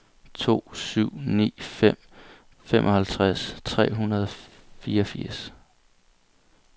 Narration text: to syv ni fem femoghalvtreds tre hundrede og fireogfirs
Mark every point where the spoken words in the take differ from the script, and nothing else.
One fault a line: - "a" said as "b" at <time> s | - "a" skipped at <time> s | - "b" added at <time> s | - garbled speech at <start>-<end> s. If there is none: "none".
none